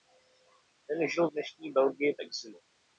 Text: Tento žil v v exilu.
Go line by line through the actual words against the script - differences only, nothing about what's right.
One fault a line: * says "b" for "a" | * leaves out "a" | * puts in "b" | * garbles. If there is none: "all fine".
* says "Ten" for "Tento"
* puts in "dnešní Belgii"